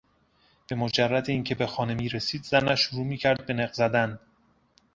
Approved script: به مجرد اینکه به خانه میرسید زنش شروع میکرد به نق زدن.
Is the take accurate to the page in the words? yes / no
yes